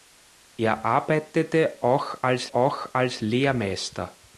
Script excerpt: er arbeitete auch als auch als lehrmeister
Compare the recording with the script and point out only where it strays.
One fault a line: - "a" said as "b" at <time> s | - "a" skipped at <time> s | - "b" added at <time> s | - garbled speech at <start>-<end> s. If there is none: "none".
none